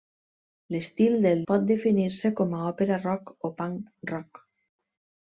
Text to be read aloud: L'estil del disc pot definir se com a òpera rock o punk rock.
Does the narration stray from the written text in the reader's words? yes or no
yes